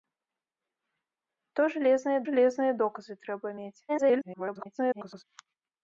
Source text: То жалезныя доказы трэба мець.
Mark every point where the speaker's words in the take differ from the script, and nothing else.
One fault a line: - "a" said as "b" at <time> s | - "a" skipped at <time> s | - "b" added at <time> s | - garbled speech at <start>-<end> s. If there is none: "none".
- "жалезныя" added at 2.3 s
- garbled speech at 3.9-5.2 s